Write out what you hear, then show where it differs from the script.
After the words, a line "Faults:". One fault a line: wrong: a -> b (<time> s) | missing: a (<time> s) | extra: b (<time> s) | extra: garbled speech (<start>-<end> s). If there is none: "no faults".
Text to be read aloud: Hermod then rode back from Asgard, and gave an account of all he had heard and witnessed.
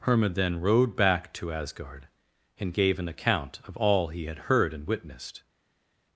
Hermod then rode back to Asgard, and gave an account of all he had heard and witnessed.
Faults:
wrong: from -> to (1.3 s)